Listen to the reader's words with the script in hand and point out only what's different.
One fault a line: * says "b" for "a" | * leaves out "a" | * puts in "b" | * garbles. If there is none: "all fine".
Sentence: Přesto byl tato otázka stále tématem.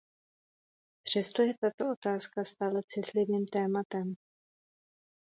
* says "je" for "byl"
* puts in "citlivým"